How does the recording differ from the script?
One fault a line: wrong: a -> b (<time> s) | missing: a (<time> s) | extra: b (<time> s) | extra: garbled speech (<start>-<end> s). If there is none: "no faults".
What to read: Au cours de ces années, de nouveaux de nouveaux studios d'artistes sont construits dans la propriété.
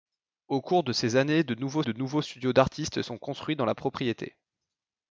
no faults